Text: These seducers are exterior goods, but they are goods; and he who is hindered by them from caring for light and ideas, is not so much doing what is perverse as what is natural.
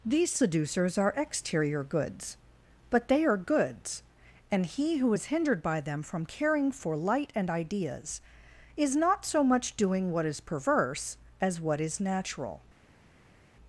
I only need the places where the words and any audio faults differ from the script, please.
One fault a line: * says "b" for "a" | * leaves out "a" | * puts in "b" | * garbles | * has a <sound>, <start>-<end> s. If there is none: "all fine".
all fine